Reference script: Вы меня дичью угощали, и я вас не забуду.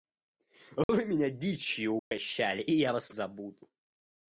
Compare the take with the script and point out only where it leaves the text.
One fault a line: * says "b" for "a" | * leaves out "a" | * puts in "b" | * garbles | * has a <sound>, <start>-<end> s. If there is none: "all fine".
* has a dropout, 0.8-0.9 s
* has a dropout, 2.0-2.1 s
* leaves out "не"